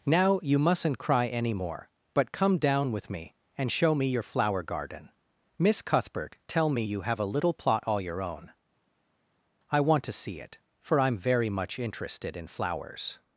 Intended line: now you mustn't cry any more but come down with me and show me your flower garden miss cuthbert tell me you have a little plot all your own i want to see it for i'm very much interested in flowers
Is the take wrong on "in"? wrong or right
right